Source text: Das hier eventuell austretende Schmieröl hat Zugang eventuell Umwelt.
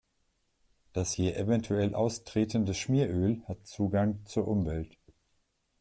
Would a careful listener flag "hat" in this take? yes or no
no